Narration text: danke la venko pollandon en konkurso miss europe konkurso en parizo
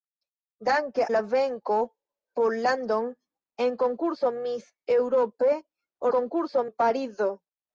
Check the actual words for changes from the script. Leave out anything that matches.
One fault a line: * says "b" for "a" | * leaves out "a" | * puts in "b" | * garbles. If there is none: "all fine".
all fine